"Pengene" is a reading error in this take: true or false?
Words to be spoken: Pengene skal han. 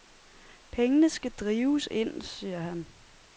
false